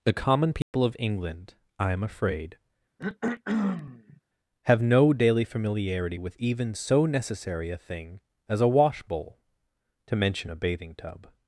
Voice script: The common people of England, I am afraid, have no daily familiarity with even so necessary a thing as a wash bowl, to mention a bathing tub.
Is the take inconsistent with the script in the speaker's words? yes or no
no